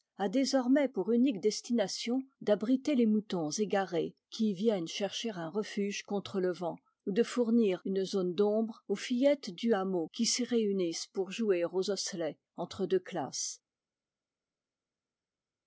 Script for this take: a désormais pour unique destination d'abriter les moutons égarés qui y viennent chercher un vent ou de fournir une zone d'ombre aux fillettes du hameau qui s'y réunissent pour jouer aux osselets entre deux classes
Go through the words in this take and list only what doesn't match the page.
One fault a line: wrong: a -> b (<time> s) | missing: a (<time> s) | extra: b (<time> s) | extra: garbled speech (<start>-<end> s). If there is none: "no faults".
extra: refuge contre le (5.5 s)